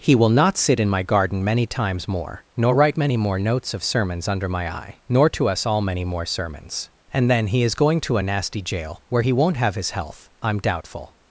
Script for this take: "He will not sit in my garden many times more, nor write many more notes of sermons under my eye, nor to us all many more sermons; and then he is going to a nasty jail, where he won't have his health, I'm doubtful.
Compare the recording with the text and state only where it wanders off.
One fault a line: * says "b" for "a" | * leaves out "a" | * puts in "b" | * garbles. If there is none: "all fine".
all fine